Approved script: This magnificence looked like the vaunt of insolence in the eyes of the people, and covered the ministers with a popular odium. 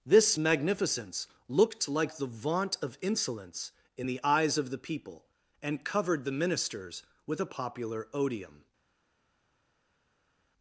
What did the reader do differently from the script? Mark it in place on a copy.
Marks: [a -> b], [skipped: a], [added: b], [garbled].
This magnificence looked like the vaunt of insolence in the eyes of the people, and covered the ministers with a popular odium.